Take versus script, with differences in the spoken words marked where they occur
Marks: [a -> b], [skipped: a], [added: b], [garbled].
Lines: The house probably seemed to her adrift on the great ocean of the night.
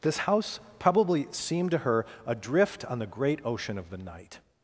[The -> This] house probably seemed to her adrift on the great ocean of the night.